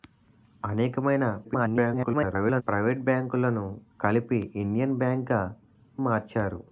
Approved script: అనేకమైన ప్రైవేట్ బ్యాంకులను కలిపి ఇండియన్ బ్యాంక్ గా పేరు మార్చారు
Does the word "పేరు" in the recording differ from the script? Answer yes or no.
yes